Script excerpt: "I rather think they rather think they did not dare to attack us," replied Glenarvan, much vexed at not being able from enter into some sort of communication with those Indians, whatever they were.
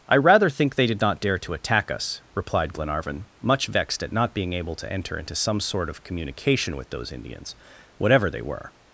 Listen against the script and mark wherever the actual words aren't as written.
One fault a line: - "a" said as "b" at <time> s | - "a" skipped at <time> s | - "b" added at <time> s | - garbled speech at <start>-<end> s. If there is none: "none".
- "rather think they" skipped at 0.9 s
- "from" said as "to" at 4.8 s